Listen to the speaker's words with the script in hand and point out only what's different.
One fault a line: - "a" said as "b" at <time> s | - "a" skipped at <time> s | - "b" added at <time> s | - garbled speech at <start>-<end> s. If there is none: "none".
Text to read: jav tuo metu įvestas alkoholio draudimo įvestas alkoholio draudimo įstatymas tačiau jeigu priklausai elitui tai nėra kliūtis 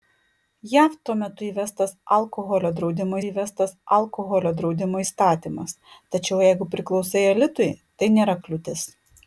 none